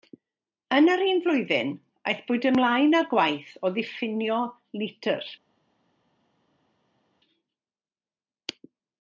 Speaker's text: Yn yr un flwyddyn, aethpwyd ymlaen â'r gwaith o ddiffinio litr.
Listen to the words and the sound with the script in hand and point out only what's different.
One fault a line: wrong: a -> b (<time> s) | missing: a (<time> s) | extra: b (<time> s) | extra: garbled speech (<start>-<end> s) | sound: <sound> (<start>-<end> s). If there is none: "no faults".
no faults